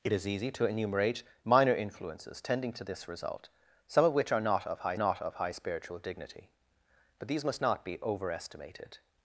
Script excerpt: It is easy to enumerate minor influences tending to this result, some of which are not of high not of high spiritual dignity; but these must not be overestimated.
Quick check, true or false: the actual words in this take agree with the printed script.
true